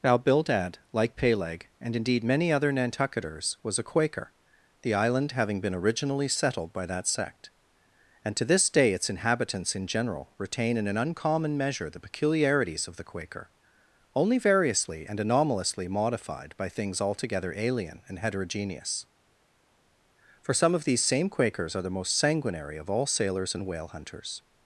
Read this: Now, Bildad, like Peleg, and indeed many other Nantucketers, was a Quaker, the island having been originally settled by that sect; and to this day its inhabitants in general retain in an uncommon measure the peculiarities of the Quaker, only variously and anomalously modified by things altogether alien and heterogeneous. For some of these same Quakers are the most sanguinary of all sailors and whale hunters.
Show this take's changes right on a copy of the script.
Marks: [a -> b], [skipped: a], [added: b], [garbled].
Now, Bildad, like Peleg, and indeed many other Nantucketers, was a Quaker, the island having been originally settled by that sect; and to this day its inhabitants in general retain in an uncommon measure the peculiarities of the Quaker, only variously and anomalously modified by things altogether alien and heterogeneous. For some of these same Quakers are the most sanguinary of all sailors and whale hunters.